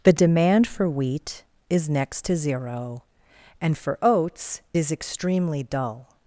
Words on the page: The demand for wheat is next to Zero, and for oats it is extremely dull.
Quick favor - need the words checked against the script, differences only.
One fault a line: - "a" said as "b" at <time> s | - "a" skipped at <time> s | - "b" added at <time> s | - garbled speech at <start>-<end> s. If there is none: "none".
- "it" skipped at 4.6 s